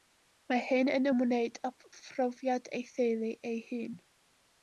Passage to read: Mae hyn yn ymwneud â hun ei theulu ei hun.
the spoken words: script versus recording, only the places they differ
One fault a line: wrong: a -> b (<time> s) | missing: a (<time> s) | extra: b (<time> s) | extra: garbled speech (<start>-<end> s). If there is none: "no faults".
wrong: hun -> phrofiad (2.0 s)